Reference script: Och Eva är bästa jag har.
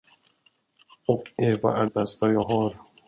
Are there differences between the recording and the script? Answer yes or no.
no